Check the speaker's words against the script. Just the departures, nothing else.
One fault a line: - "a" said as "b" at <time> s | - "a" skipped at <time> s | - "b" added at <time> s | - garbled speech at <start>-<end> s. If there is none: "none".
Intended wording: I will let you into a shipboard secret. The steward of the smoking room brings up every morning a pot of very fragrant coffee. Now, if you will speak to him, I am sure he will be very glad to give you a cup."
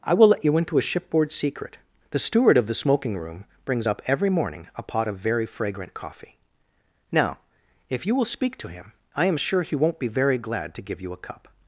- "will" said as "won't" at 9.7 s